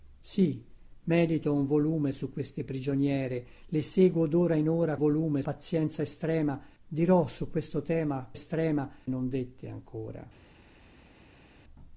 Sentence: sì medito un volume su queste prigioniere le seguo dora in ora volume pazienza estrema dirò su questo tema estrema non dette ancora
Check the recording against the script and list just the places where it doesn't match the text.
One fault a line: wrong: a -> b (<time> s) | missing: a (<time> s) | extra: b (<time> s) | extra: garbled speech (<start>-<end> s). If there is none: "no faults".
no faults